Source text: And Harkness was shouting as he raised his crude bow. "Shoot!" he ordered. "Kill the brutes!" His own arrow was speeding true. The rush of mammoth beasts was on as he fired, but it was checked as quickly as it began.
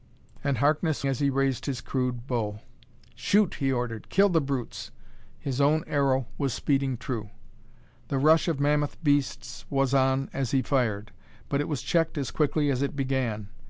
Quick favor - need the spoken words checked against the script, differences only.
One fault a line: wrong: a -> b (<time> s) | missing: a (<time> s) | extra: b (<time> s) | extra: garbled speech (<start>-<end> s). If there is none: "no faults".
missing: was shouting (1.1 s)